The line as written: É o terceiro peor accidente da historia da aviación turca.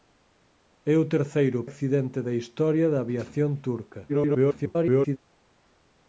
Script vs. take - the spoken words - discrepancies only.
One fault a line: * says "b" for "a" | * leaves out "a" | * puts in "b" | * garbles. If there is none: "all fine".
* leaves out "peor"
* garbles